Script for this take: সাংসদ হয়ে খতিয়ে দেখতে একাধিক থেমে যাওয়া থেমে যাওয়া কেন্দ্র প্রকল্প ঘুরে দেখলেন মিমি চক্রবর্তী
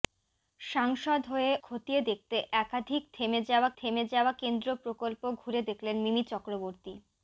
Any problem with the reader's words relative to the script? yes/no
no